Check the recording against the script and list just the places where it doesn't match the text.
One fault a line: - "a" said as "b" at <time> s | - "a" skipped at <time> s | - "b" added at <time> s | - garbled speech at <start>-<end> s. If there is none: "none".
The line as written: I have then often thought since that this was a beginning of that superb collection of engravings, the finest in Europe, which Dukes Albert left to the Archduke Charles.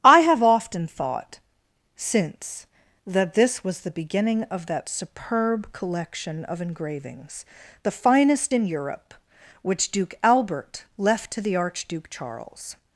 - "then" skipped at 0.4 s
- "a" said as "the" at 3.8 s
- "Dukes" said as "Duke" at 9.9 s